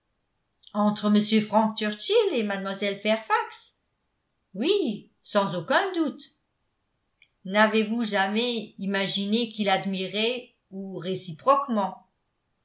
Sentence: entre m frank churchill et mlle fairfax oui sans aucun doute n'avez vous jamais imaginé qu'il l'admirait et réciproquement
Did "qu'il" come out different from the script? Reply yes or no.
no